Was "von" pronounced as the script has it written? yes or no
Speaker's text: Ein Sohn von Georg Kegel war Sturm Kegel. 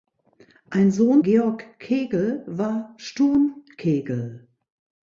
no